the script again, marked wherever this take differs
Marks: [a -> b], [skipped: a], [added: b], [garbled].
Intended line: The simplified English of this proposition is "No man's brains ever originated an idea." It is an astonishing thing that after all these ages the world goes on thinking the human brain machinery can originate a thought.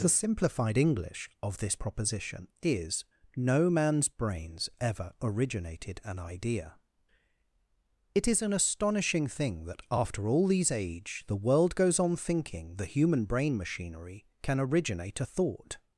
The simplified English of this proposition is "No man's brains ever originated an idea." It is an astonishing thing that after all these [ages -> age] the world goes on thinking the human brain machinery can originate a thought.